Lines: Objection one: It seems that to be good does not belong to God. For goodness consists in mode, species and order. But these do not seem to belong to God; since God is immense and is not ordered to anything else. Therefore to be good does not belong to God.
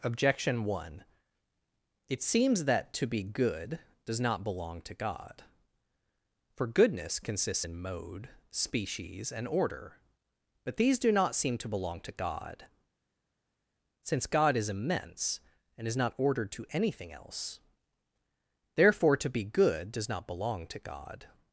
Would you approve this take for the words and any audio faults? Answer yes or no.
yes